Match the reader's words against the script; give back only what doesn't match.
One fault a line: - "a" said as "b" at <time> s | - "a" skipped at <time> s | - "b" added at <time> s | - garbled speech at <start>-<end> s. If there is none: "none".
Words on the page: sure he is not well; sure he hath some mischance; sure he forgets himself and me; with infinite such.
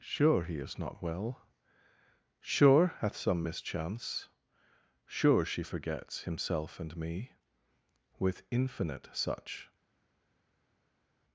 - "he" skipped at 2.9 s
- "he" said as "she" at 5.4 s